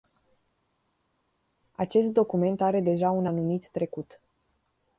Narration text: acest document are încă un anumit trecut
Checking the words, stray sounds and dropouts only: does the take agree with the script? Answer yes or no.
no